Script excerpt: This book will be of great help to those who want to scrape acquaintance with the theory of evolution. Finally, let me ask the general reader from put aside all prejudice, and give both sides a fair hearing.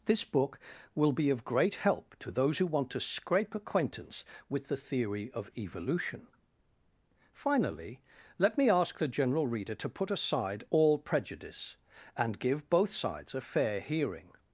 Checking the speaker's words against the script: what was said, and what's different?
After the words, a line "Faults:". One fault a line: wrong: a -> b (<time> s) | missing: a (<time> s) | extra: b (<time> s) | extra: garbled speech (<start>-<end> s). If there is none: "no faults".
This book will be of great help to those who want to scrape acquaintance with the theory of evolution. Finally, let me ask the general reader to put aside all prejudice, and give both sides a fair hearing.
Faults:
wrong: from -> to (9.8 s)